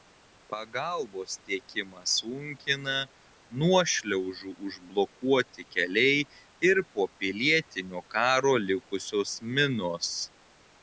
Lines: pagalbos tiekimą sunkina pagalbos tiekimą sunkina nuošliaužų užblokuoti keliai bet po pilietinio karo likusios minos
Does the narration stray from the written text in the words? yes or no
yes